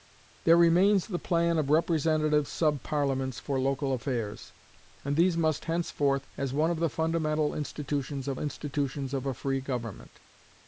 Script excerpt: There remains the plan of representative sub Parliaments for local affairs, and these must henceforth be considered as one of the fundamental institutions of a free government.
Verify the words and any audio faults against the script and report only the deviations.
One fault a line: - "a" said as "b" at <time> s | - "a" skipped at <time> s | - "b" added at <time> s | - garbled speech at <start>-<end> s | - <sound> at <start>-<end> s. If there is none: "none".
- "be considered" skipped at 6.3 s
- "institutions of" added at 8.4 s